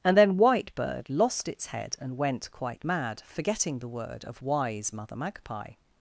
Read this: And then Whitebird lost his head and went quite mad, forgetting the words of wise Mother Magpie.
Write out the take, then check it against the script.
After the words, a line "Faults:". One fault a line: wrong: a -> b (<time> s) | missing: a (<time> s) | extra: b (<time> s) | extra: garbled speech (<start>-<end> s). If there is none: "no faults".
And then Whitebird lost its head and went quite mad, forgetting the word of wise Mother Magpie.
Faults:
wrong: his -> its (1.5 s)
wrong: words -> word (3.9 s)